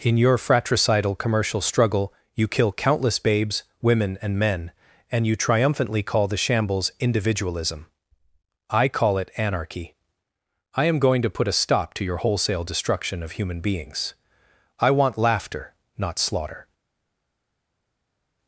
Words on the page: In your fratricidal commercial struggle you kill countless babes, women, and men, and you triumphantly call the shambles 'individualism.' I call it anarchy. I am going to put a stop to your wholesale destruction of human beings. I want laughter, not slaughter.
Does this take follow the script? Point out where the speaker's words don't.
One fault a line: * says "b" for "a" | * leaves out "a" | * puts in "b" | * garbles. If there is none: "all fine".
all fine